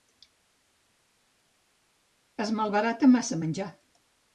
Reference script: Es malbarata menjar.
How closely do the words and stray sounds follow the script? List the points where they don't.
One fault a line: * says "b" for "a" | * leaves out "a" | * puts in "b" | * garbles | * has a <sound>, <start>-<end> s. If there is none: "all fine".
* puts in "massa"